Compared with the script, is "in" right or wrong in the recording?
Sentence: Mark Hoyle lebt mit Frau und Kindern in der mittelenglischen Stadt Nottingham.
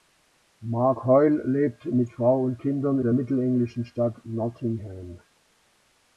wrong